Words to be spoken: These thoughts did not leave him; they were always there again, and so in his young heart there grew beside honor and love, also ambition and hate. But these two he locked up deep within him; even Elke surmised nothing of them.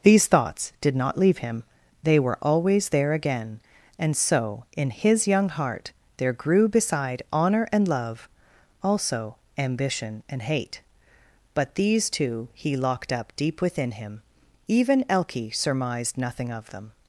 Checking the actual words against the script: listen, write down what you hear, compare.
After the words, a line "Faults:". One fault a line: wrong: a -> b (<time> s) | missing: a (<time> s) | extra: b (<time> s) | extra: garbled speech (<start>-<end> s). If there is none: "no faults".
These thoughts did not leave him; they were always there again, and so in his young heart there grew beside honor and love, also ambition and hate. But these two he locked up deep within him; even Elke surmised nothing of them.
Faults:
no faults